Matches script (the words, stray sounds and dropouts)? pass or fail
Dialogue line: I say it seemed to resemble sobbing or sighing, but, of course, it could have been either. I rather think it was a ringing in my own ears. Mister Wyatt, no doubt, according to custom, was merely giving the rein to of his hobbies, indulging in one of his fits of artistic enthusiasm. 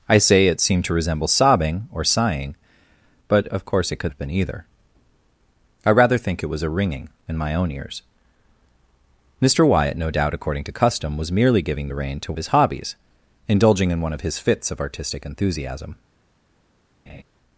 fail